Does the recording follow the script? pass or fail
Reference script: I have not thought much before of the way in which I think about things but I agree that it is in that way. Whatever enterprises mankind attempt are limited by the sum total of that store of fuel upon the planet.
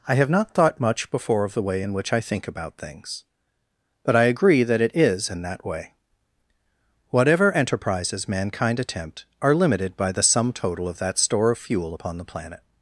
pass